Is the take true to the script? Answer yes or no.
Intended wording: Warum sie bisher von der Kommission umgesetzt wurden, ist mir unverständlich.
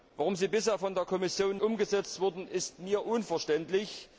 yes